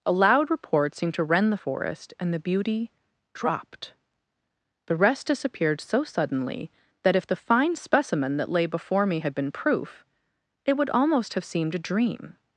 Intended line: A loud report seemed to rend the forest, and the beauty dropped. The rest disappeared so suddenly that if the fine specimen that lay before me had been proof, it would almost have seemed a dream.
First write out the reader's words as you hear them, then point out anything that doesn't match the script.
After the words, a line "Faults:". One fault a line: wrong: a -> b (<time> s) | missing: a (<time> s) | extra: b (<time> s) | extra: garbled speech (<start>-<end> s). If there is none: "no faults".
A loud report seemed to rend the forest, and the beauty dropped. The rest disappeared so suddenly that if the fine specimen that lay before me had been proof, it would almost have seemed a dream.
Faults:
no faults